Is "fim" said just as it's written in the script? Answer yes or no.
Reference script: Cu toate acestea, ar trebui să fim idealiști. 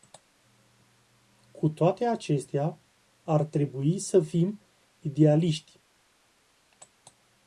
yes